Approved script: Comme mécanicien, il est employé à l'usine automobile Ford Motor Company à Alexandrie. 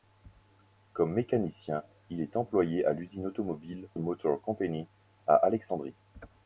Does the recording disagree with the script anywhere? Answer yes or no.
yes